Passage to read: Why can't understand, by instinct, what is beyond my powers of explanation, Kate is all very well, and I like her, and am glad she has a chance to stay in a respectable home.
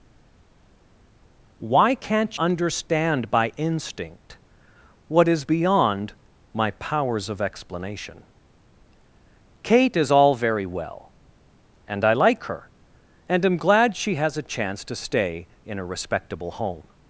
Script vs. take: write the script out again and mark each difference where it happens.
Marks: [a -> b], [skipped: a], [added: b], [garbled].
Why can't understand, by instinct, what is beyond my powers of explanation, Kate is all very well, and I like her, and am glad she has a chance to stay in a respectable home.